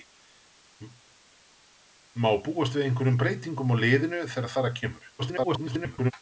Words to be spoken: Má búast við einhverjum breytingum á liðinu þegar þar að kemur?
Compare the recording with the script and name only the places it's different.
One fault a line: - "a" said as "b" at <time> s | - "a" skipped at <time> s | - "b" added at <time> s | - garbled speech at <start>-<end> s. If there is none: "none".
- garbled speech at 5.2-6.1 s